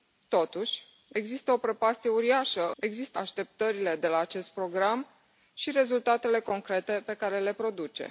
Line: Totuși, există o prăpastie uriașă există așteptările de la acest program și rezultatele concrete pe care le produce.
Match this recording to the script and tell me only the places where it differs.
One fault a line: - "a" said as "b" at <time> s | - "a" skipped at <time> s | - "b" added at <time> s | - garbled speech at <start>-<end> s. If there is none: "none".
none